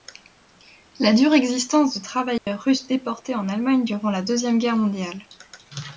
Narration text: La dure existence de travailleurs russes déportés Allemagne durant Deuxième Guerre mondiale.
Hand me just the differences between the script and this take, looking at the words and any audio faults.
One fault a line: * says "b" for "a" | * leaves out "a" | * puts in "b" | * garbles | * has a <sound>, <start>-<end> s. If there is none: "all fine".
* has a dropout, 2.4-2.5 s
* puts in "en"
* puts in "la"